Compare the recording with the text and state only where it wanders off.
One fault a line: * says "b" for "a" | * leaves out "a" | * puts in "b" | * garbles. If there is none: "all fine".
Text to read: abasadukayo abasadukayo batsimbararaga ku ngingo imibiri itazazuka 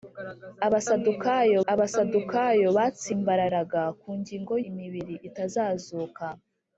all fine